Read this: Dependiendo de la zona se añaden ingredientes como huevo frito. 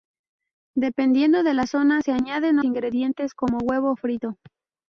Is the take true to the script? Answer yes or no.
yes